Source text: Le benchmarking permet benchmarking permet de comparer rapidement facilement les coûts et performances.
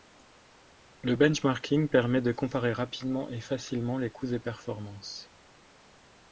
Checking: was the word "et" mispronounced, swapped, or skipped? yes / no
no